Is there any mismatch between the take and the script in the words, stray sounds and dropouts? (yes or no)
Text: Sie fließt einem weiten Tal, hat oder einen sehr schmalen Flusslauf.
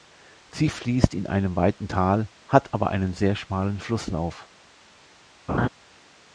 yes